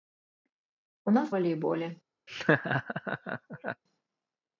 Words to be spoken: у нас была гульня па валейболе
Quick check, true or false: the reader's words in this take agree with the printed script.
false